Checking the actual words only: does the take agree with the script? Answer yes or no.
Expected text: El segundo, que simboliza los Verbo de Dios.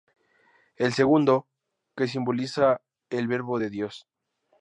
no